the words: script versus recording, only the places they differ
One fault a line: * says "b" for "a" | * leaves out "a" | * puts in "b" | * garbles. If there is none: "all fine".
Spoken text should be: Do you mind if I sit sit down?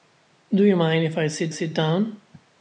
all fine